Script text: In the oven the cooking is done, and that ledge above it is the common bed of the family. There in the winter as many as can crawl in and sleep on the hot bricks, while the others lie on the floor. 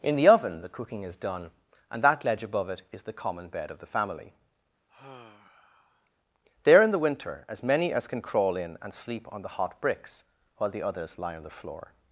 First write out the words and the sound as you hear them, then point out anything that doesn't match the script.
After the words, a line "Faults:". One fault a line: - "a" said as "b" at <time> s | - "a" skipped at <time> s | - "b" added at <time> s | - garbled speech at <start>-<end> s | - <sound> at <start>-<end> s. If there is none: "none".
In the oven the cooking is done, and that ledge above it is the common bed of the family. There in the winter as many as can crawl in and sleep on the hot bricks, while the others lie on the floor.
Faults:
- sigh at 4.9-6.1 s